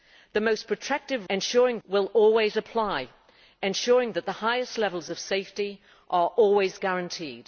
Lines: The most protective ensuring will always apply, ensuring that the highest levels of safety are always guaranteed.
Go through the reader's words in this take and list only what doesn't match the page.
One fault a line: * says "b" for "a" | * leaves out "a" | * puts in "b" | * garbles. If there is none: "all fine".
all fine